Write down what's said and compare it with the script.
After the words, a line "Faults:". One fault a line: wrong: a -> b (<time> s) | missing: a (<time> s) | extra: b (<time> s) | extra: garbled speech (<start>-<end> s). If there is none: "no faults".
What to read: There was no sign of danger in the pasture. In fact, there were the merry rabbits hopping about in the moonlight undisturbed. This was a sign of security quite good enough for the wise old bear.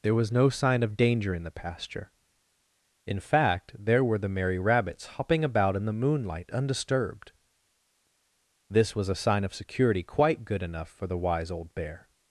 There was no sign of danger in the pasture. In fact, there were the merry rabbits hopping about in the moonlight undisturbed. This was a sign of security quite good enough for the wise old bear.
Faults:
no faults